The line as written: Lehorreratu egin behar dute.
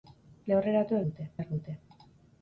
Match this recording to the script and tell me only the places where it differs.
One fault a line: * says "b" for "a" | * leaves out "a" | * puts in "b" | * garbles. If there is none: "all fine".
* says "dute" for "egin"